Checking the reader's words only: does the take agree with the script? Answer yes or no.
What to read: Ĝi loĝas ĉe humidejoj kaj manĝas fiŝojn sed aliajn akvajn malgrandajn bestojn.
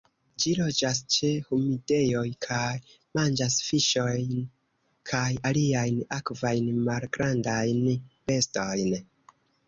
no